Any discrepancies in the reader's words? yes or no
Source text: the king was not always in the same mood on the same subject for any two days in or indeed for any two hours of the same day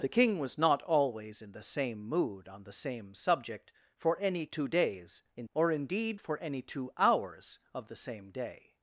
no